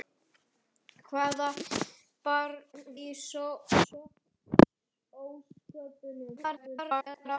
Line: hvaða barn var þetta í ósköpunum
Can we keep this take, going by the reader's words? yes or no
no